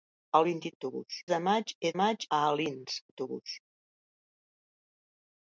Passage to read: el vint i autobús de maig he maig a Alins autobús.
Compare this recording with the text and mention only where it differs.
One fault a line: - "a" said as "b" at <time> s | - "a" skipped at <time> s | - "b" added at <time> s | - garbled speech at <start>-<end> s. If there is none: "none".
none